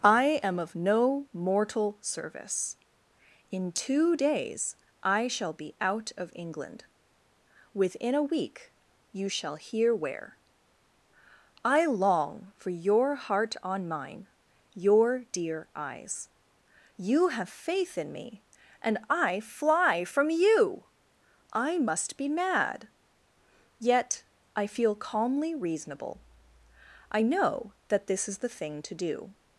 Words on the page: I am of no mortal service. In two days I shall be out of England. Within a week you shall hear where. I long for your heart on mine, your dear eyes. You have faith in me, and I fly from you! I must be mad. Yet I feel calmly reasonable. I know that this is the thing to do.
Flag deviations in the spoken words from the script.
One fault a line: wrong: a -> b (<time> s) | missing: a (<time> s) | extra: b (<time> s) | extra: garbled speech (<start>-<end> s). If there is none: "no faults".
no faults